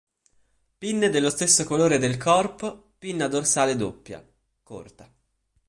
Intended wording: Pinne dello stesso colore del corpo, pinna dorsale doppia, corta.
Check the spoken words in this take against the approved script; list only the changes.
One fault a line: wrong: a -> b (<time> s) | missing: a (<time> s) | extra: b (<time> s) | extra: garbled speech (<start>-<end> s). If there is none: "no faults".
no faults